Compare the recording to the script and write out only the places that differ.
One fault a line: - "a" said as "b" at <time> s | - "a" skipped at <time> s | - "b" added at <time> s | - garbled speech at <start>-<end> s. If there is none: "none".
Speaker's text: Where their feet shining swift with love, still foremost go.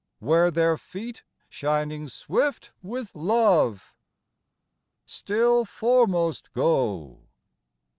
none